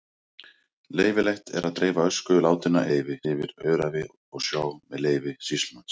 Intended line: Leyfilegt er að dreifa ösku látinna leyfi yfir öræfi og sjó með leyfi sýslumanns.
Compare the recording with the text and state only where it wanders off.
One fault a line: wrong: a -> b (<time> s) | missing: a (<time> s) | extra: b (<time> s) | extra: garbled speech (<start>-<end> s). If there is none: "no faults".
no faults